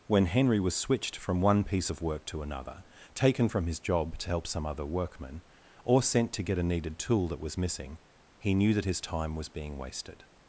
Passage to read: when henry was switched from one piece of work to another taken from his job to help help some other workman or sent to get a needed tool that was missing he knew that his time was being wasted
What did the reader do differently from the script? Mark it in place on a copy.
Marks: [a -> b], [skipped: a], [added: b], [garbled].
when henry was switched from one piece of work to another taken from his job to help [skipped: help] some other workman or sent to get a needed tool that was missing he knew that his time was being wasted